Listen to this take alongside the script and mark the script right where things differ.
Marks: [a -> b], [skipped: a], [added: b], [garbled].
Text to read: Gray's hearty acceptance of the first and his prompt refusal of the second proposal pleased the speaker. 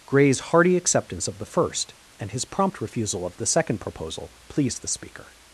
Gray's hearty acceptance of the first and his prompt refusal of the second proposal pleased the speaker.